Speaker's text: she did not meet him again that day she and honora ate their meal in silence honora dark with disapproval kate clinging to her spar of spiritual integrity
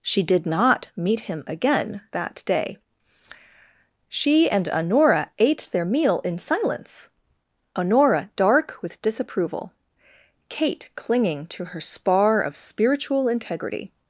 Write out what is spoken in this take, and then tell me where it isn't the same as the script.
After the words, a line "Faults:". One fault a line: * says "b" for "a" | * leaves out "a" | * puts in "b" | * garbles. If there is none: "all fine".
she did not meet him again that day she and honora ate their meal in silence honora dark with disapproval kate clinging to her spar of spiritual integrity
Faults:
all fine